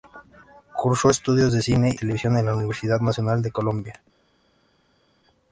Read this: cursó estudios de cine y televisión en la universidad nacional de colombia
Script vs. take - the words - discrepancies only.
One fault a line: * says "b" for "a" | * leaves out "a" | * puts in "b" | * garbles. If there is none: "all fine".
* leaves out "y"